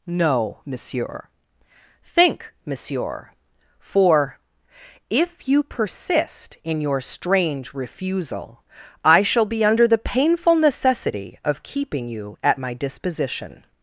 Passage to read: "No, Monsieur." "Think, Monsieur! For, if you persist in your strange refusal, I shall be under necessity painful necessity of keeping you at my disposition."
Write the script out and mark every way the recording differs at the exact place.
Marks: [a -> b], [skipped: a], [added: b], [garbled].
"No, Monsieur." "Think, Monsieur! For, if you persist in your strange refusal, I shall be under [necessity -> the] painful necessity of keeping you at my disposition."